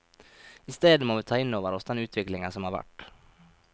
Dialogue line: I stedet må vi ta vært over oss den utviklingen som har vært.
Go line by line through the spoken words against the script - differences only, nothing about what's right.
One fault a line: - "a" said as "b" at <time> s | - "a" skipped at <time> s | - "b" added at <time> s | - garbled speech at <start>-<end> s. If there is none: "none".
- "vært" said as "inn" at 1.4 s